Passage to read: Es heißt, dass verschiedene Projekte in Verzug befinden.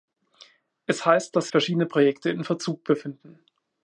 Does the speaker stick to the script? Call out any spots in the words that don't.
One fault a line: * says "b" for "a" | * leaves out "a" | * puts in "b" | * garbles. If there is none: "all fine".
all fine